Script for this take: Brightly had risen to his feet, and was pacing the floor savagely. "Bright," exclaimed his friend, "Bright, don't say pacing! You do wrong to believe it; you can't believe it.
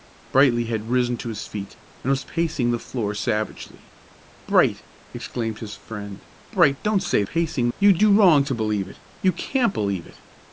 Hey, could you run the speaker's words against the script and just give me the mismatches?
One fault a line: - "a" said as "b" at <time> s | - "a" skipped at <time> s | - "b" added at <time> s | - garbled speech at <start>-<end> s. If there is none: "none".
none